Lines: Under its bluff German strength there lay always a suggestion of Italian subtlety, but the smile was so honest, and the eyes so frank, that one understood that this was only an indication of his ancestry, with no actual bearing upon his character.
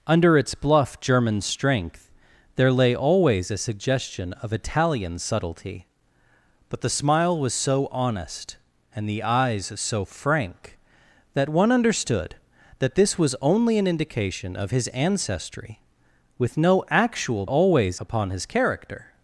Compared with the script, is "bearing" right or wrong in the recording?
wrong